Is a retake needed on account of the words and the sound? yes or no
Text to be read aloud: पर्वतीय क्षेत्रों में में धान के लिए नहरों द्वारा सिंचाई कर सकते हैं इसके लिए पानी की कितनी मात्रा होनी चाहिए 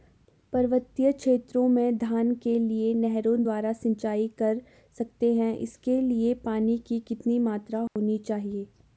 yes